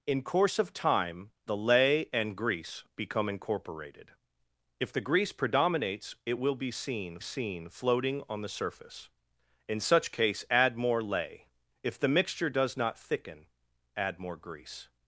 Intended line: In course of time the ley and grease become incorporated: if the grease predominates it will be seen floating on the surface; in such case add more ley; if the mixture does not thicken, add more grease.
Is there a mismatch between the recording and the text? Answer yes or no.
yes